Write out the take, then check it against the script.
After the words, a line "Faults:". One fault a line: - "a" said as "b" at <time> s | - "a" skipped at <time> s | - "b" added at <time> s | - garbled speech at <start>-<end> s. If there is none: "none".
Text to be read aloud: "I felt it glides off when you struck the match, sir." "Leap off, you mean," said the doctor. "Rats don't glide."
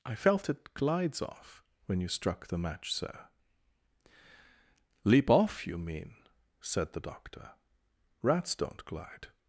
"I felt it glides off when you struck the match, sir." "Leap off, you mean," said the doctor. "Rats don't glide."
Faults:
none